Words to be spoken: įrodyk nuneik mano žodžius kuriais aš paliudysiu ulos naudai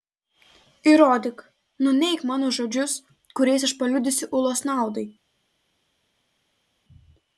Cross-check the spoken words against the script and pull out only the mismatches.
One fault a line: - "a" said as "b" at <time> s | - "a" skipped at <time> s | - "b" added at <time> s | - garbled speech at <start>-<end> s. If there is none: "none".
none